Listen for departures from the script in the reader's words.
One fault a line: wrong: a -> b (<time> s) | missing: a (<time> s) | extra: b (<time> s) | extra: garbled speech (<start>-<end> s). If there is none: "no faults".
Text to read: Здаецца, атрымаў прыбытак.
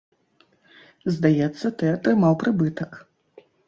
extra: ты (1.8 s)